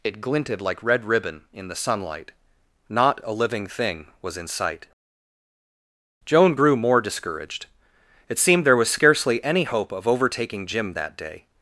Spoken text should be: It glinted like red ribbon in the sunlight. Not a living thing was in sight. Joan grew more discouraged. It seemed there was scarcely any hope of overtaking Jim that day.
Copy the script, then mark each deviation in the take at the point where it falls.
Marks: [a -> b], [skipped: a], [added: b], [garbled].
It glinted like red ribbon in the sunlight. Not a living thing was in sight. Joan grew more discouraged. It seemed there was scarcely any hope of overtaking Jim that day.